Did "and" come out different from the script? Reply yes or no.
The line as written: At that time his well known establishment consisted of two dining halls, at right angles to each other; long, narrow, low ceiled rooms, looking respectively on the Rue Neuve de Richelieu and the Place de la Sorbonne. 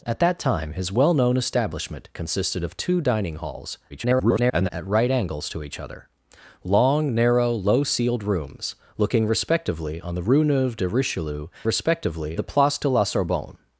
yes